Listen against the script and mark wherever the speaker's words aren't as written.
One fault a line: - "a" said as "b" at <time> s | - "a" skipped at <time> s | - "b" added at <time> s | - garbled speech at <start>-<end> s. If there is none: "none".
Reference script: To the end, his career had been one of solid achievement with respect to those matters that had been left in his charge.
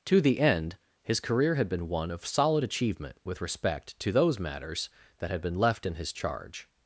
none